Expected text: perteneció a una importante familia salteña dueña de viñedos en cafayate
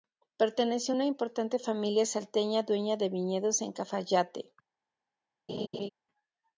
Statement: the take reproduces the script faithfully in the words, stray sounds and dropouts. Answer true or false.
false